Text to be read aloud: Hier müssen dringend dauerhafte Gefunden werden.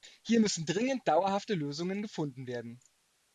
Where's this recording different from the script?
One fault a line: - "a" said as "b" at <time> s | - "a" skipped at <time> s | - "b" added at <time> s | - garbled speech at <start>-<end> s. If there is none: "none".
- "Lösungen" added at 1.5 s